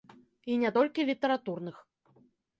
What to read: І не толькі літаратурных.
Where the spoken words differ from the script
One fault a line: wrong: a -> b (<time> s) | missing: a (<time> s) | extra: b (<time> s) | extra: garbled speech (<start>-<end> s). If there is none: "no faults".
no faults